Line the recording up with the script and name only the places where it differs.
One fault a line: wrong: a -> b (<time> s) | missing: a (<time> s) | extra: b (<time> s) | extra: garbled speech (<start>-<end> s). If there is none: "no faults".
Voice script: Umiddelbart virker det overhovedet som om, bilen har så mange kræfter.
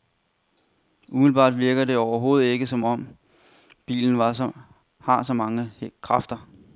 extra: ikke (2.5 s)